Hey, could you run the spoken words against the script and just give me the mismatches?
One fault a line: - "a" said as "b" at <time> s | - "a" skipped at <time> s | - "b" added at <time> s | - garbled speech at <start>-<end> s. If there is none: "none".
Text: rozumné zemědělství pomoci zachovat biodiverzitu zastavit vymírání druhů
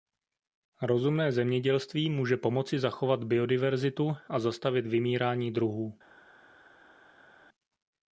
- "může" added at 2.1 s
- "a" added at 4.3 s